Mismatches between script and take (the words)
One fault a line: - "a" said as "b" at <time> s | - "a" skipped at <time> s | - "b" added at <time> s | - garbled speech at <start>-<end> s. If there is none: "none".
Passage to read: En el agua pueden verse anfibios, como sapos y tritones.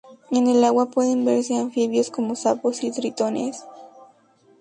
none